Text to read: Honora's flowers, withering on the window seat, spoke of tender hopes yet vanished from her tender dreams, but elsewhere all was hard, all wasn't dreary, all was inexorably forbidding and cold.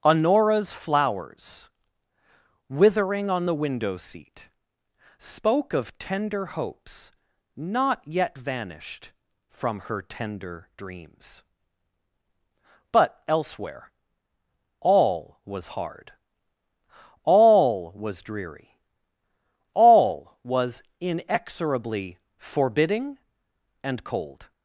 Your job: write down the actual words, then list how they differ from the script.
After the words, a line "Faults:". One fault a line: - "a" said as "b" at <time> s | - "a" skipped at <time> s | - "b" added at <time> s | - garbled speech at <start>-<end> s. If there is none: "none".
Honora's flowers, withering on the window seat, spoke of tender hopes not yet vanished from her tender dreams, but elsewhere all was hard, all was dreary, all was inexorably forbidding and cold.
Faults:
- "not" added at 7.6 s
- "wasn't" said as "was" at 18.0 s